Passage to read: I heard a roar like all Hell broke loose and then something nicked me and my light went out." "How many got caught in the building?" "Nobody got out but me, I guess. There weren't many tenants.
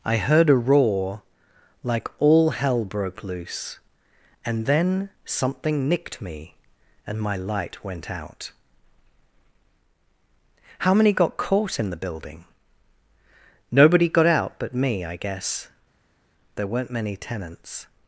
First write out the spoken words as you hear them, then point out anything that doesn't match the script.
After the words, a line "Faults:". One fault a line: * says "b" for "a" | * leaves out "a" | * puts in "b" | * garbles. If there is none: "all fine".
I heard a roar like all Hell broke loose and then something nicked me and my light went out." "How many got caught in the building?" "Nobody got out but me, I guess. There weren't many tenants.
Faults:
all fine